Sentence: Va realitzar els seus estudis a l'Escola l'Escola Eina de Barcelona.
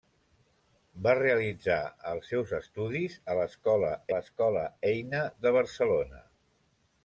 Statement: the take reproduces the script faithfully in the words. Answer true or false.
true